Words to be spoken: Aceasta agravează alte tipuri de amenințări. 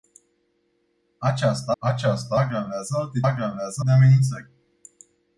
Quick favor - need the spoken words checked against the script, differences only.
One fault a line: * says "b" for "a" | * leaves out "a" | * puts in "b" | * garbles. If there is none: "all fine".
* puts in "aceasta"
* says "agravează" for "tipuri"